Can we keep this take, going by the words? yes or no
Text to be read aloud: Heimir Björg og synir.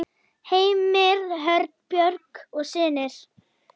no